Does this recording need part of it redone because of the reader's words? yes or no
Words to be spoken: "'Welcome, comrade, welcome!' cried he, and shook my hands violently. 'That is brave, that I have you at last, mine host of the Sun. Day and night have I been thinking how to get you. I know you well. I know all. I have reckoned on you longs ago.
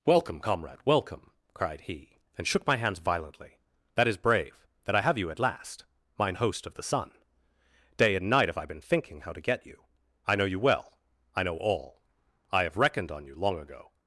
yes